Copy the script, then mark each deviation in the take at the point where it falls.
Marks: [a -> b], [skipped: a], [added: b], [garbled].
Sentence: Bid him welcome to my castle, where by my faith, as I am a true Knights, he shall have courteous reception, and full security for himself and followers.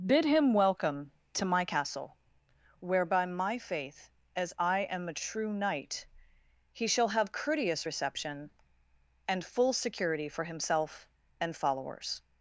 Bid him welcome to my castle, where by my faith, as I am a true [Knights, -> Knight] he shall have courteous reception, and full security for himself and followers.